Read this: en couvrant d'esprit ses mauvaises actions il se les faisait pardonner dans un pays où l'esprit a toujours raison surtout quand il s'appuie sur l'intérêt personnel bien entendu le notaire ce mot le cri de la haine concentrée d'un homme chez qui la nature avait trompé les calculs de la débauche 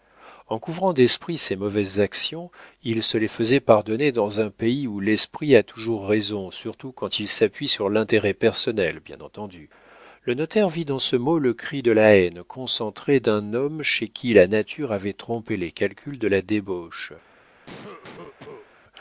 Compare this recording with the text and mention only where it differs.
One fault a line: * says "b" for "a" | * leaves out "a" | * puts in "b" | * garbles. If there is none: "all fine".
* puts in "vit dans"